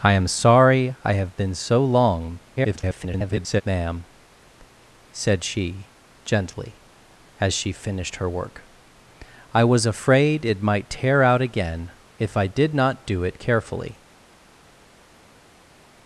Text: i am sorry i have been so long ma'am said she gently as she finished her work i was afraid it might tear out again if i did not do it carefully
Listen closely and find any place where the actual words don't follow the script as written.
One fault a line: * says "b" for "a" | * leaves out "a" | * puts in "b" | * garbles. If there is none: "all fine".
* garbles